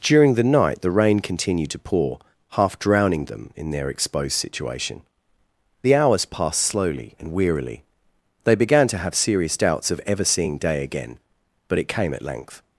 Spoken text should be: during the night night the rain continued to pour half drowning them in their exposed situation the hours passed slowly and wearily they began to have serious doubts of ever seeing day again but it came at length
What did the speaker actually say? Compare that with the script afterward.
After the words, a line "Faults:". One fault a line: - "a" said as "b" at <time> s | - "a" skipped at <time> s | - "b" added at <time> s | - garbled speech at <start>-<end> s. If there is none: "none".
during the night the rain continued to pour half drowning them in their exposed situation the hours passed slowly and wearily they began to have serious doubts of ever seeing day again but it came at length
Faults:
- "night" skipped at 0.8 s